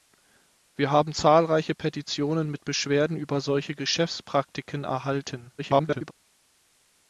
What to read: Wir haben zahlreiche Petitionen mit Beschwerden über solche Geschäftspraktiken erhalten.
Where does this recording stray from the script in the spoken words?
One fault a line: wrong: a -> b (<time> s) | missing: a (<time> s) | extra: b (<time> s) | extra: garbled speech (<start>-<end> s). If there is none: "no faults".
extra: garbled speech (5.6-6.1 s)